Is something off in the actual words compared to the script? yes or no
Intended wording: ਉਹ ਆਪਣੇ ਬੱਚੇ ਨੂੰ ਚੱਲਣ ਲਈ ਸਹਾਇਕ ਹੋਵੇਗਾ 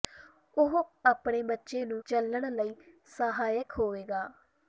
no